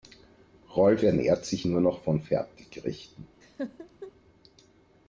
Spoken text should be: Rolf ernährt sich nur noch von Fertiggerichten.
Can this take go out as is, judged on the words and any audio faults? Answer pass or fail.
fail